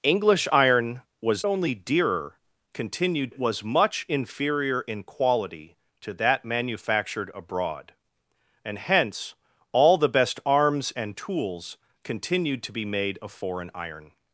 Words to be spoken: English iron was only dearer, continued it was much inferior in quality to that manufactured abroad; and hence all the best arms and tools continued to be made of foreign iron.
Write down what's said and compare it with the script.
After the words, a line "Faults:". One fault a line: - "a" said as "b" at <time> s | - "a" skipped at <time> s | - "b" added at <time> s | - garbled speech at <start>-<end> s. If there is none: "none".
English iron was only dearer, continued it was much inferior in quality to that manufactured abroad; and hence all the best arms and tools continued to be made of foreign iron.
Faults:
none